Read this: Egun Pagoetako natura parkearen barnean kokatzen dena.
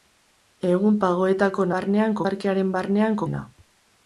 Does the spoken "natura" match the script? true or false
false